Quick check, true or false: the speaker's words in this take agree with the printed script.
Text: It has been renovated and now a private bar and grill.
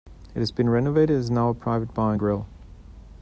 false